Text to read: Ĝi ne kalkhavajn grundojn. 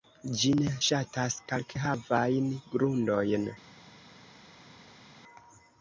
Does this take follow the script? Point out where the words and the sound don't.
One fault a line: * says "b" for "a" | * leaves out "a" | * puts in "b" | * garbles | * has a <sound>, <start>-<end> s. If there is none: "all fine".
* puts in "ŝatas"